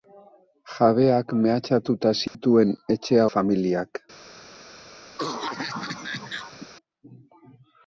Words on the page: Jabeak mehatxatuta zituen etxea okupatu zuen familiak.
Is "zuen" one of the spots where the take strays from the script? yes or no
yes